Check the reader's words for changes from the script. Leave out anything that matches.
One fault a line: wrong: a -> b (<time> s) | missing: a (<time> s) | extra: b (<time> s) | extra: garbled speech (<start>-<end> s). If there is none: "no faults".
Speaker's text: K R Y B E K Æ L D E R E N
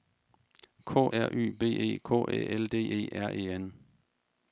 no faults